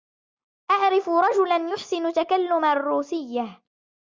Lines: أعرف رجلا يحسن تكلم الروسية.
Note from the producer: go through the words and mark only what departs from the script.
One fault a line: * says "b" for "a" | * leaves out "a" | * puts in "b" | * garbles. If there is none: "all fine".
all fine